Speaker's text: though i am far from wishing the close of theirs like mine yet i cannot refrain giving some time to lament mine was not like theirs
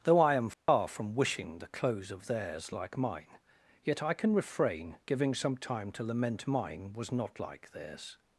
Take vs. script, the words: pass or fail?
fail